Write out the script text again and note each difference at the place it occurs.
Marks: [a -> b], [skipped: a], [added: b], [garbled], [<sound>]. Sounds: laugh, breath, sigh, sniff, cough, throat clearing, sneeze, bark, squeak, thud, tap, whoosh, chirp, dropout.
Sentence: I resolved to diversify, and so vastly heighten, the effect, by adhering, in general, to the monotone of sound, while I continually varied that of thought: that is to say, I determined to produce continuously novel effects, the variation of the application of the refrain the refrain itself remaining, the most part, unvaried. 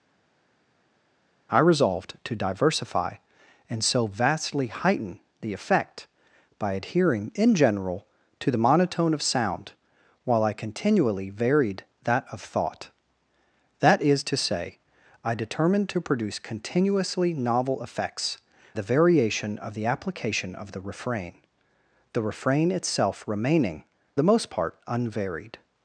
I resolved to diversify, and so vastly heighten, the effect, by adhering, in general, to the monotone of sound, while I continually varied that of thought: that is to say, I determined to produce continuously novel effects, the variation of the application of the refrain the refrain itself remaining, the most part, unvaried.